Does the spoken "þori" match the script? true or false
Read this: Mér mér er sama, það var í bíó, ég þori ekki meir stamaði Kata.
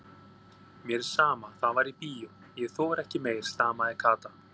true